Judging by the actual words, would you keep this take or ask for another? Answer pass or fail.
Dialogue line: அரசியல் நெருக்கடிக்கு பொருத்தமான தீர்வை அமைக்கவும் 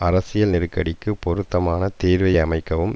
pass